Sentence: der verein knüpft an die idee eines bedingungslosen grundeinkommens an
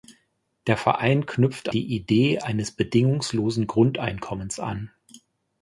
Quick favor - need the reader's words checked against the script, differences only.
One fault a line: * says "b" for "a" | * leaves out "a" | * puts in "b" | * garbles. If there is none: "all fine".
* leaves out "an"